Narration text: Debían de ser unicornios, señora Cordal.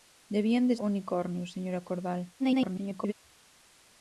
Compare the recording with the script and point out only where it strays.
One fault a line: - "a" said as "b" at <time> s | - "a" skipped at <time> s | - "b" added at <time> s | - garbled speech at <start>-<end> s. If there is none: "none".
- "ser" skipped at 0.8 s
- garbled speech at 2.4-3.1 s